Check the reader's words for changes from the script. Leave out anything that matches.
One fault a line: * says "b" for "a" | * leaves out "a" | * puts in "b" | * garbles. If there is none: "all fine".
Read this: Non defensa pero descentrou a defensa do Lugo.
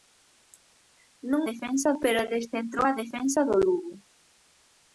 all fine